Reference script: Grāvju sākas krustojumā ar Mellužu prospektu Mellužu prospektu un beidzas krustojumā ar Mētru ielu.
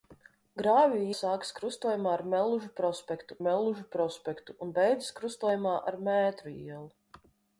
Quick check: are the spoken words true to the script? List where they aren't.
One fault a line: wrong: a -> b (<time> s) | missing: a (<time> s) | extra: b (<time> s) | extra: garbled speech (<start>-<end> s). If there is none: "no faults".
no faults